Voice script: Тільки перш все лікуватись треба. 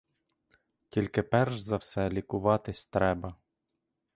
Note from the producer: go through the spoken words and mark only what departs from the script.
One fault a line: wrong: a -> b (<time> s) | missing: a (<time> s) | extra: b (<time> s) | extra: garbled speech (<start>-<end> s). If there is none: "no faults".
extra: за (1.6 s)